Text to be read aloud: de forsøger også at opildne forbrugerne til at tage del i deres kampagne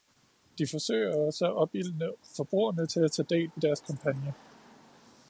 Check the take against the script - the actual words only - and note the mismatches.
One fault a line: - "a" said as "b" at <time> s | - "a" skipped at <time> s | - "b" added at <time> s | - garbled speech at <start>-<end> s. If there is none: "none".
none